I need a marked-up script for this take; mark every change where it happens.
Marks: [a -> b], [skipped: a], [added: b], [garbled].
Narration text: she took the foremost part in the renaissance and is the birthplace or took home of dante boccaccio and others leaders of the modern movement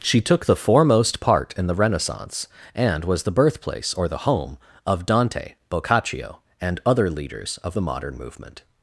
she took the foremost part in the renaissance and [is -> was] the birthplace or [took -> the] home of dante boccaccio and [others -> other] leaders of the modern movement